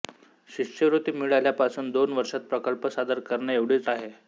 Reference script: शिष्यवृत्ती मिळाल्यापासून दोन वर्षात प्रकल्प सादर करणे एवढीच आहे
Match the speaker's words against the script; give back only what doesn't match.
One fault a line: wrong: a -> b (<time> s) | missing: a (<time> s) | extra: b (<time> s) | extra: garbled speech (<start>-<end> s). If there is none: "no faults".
no faults